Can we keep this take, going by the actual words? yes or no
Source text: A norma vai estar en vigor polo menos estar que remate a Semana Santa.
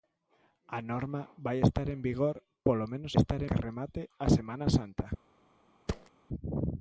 yes